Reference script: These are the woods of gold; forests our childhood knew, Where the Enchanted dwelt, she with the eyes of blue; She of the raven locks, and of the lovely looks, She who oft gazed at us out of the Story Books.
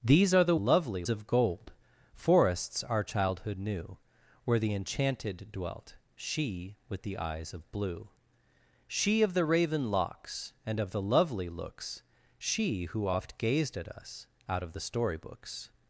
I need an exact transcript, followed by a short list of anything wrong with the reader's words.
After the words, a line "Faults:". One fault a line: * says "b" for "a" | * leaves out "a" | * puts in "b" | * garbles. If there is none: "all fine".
These are the lovely of gold; forests our childhood knew, Where the Enchanted dwelt, she with the eyes of blue; She of the raven locks, and of the lovely looks, She who oft gazed at us out of the Story Books.
Faults:
* says "lovely" for "woods"